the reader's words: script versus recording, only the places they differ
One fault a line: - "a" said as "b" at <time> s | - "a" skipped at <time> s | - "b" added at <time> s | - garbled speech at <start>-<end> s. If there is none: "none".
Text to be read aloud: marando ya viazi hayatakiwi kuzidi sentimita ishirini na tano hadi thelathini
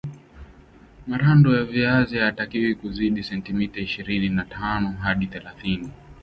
none